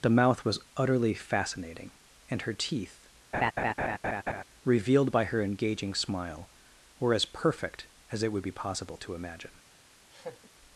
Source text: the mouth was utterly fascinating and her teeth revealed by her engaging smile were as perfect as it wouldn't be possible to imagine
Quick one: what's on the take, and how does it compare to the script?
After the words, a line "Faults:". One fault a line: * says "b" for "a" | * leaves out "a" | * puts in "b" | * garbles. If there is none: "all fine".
the mouth was utterly fascinating and her teeth revealed by her engaging smile were as perfect as it would be possible to imagine
Faults:
* says "would" for "wouldn't"